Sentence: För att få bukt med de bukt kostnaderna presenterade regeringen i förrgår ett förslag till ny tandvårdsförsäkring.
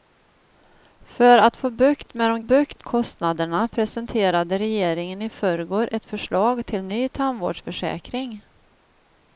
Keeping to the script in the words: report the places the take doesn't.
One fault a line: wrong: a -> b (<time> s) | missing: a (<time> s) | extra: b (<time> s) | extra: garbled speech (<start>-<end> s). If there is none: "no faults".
no faults